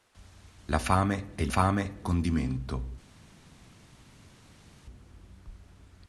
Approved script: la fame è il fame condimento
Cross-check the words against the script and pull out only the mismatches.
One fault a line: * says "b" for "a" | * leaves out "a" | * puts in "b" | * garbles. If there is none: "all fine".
all fine